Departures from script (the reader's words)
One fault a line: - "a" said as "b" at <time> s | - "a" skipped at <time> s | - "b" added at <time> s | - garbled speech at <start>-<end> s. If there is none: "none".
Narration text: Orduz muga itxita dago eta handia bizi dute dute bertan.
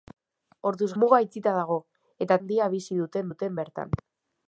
none